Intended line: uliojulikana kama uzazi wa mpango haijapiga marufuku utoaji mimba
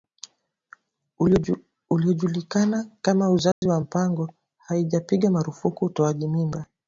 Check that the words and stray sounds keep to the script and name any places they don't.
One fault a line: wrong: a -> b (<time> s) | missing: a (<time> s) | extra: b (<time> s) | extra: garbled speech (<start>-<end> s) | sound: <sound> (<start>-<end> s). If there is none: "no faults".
sound: dropout (3.5-3.6 s)